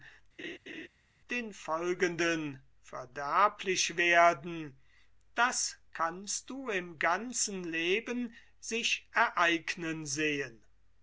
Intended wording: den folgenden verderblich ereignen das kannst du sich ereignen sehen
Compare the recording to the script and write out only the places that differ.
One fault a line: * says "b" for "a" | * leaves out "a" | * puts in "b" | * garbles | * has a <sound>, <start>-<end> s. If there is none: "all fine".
* has a laugh, 0.4-0.9 s
* says "werden" for "ereignen"
* puts in "im ganzen leben"